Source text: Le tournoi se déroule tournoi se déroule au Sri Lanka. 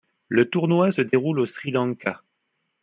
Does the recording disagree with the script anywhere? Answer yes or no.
yes